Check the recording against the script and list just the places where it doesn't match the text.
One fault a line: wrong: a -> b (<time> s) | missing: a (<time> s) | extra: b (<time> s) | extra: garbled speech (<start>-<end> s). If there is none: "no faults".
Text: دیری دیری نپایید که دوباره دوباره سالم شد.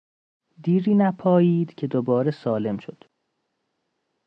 missing: دیری (0.9 s)
missing: دوباره (2.3 s)